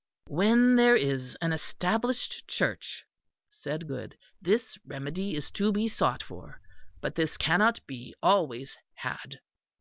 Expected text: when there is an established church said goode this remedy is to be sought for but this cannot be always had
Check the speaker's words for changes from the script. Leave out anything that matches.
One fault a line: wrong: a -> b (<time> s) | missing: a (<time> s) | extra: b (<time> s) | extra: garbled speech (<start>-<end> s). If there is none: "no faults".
no faults